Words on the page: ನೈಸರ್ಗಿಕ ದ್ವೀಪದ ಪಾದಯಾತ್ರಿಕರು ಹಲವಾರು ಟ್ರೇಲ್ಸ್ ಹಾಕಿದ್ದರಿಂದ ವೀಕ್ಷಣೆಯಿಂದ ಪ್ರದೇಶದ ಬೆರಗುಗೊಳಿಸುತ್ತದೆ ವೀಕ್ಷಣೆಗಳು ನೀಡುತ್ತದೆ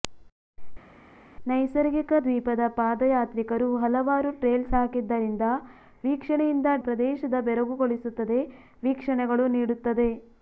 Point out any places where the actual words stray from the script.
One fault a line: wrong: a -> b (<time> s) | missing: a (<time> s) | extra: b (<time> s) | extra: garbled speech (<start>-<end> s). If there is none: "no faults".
no faults